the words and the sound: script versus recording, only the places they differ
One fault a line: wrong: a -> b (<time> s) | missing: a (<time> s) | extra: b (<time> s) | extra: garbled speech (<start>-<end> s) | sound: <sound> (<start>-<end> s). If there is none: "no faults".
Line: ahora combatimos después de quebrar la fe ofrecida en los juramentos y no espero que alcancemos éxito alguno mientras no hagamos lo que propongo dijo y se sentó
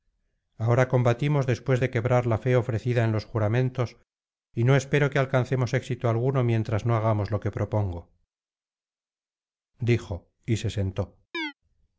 sound: chirp (11.3-11.5 s)